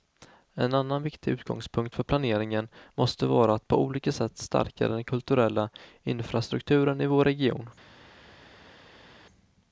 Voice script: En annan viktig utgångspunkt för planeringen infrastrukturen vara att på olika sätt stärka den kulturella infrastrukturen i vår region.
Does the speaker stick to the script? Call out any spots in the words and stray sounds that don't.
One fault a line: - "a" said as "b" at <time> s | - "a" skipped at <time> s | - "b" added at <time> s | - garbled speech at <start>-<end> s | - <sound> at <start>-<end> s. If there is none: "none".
- "infrastrukturen" said as "måste" at 2.9 s